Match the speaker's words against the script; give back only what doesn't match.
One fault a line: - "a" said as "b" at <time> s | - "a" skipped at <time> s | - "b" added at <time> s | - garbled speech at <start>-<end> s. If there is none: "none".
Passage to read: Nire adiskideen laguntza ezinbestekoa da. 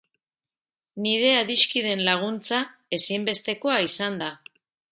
- "izan" added at 3.9 s